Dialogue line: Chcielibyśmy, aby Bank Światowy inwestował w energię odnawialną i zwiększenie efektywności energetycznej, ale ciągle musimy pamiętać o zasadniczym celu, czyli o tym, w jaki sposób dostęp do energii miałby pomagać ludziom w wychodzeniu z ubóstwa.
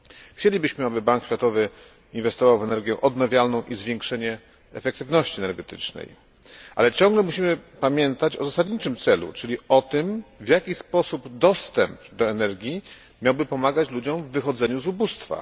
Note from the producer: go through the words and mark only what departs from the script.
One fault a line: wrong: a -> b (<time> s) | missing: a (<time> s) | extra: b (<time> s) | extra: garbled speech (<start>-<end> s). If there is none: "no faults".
no faults